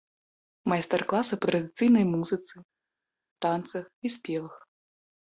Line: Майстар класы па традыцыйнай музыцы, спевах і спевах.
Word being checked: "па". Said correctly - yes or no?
yes